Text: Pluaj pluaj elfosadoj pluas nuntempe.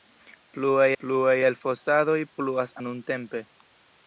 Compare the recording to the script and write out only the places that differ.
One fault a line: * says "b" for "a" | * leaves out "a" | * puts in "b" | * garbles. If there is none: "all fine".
all fine